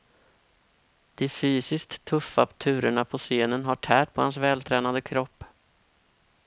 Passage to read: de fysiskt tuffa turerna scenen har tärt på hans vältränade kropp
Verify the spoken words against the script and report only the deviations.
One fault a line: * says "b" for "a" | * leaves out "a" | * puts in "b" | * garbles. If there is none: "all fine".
* puts in "på"